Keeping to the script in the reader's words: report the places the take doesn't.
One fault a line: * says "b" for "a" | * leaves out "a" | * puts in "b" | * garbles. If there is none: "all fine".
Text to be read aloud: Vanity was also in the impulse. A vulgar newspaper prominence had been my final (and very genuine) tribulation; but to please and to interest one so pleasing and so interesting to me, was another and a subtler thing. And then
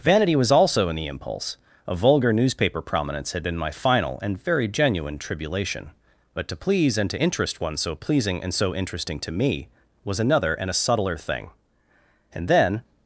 all fine